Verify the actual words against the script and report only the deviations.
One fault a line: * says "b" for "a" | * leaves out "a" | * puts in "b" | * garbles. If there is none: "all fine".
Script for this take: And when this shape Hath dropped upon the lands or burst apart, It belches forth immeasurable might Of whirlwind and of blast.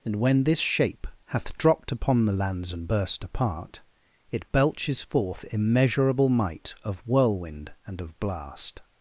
* says "and" for "or"